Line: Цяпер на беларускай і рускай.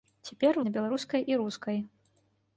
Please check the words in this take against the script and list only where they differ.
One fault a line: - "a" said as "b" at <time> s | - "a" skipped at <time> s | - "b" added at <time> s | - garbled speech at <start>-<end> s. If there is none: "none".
none